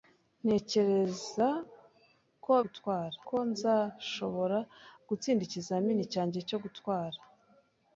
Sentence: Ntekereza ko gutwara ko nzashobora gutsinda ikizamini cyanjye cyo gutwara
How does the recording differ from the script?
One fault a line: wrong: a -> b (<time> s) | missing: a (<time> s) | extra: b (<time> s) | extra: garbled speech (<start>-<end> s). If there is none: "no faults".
no faults